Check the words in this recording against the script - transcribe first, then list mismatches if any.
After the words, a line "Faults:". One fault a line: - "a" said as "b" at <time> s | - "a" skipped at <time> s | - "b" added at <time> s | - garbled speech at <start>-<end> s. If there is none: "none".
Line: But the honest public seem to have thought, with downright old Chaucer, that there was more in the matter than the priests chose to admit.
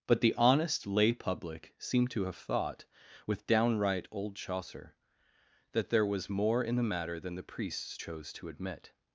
But the honest lay public seem to have thought, with downright old Chaucer, that there was more in the matter than the priests chose to admit.
Faults:
- "lay" added at 0.9 s